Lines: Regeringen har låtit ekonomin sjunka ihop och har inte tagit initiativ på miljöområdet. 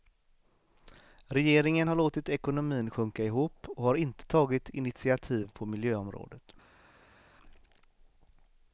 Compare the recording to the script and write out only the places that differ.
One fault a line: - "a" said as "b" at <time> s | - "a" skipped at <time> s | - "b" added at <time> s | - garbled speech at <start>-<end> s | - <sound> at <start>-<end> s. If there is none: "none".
none